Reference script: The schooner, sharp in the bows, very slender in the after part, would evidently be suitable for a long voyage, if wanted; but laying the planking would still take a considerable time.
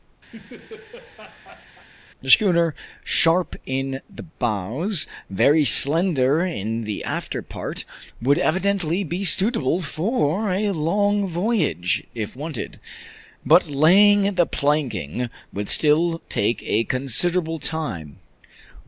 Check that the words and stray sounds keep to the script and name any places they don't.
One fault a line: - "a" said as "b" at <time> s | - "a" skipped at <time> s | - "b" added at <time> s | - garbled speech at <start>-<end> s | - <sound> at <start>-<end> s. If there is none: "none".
- laugh at 0.3-1.9 s